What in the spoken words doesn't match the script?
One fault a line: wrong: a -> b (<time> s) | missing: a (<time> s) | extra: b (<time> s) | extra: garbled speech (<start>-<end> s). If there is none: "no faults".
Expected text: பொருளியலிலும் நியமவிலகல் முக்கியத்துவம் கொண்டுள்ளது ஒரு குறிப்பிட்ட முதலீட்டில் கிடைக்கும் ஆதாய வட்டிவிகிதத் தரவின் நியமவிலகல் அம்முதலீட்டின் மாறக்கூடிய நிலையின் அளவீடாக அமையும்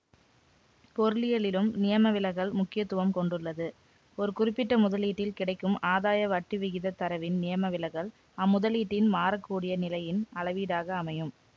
no faults